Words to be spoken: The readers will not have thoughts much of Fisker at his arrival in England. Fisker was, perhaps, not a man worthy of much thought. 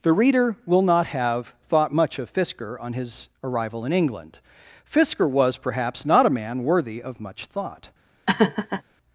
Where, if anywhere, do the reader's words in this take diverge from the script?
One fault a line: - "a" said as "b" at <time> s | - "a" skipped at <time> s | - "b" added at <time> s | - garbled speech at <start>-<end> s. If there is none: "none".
- "readers" said as "reader" at 0.1 s
- "thoughts" said as "thought" at 1.7 s
- "at" said as "on" at 2.8 s